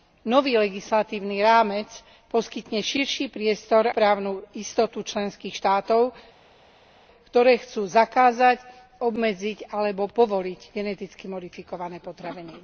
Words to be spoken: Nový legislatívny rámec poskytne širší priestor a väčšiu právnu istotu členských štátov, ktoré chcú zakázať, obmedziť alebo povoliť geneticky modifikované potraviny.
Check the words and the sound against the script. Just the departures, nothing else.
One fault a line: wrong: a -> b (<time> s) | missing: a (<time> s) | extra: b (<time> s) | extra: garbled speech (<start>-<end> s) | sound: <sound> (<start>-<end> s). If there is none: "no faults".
missing: a väčšiu (3.9 s)